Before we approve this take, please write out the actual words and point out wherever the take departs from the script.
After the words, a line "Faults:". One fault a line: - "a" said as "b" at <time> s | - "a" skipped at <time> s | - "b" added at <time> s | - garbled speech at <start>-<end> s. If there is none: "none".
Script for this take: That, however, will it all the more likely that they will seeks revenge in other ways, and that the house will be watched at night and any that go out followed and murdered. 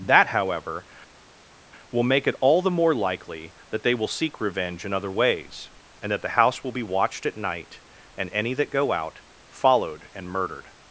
That, however, will make it all the more likely that they will seek revenge in other ways, and that the house will be watched at night and any that go out followed and murdered.
Faults:
- "make" added at 2.0 s
- "seeks" said as "seek" at 4.1 s